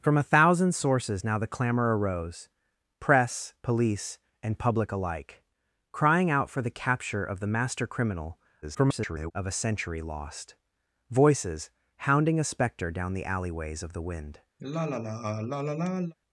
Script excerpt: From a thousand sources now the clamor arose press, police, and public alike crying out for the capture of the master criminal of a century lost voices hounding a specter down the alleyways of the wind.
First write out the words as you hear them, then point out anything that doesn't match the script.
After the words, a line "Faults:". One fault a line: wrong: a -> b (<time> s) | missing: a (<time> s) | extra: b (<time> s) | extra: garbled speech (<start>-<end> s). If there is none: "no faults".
From a thousand sources now the clamor arose press, police, and public alike crying out for the capture of the master criminal [garbled] of a century lost voices hounding a specter down the alleyways of the wind.
Faults:
extra: garbled speech (8.6-9.3 s)